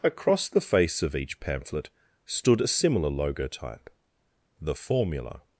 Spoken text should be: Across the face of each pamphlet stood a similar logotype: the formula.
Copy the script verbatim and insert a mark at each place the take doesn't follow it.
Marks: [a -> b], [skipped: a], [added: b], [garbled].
Across the face of each pamphlet stood a similar logotype: the formula.